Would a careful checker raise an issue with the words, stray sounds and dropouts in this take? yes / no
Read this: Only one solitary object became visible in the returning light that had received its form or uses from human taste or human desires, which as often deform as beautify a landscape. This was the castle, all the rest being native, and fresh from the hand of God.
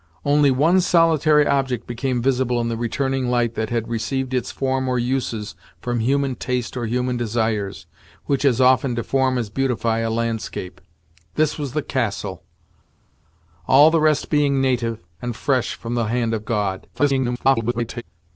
yes